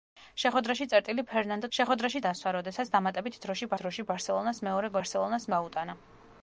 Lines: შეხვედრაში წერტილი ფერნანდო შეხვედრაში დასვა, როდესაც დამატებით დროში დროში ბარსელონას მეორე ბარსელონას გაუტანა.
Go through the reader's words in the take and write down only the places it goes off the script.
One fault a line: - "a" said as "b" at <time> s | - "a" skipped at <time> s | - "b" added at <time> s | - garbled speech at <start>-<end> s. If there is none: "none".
none